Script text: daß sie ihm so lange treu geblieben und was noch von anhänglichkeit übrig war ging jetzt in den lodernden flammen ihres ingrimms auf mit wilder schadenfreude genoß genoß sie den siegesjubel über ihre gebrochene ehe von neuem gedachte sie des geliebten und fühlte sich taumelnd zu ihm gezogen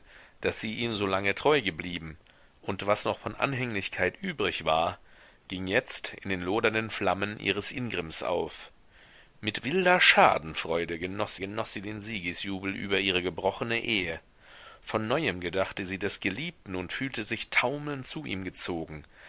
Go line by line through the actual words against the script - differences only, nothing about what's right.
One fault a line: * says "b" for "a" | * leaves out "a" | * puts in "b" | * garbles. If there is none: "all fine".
all fine